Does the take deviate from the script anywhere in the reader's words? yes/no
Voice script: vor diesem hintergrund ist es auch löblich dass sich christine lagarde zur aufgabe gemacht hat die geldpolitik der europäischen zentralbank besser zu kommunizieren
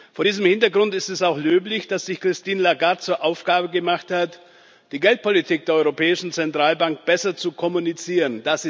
no